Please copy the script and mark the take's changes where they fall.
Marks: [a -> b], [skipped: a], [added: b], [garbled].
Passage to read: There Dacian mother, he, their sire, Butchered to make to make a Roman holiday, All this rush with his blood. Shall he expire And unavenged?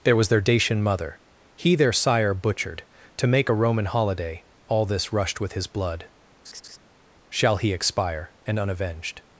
There [added: was their] Dacian mother, he, their sire, Butchered to make [skipped: to make] a Roman holiday, All this [rush -> rushed] with his blood. Shall he expire And unavenged?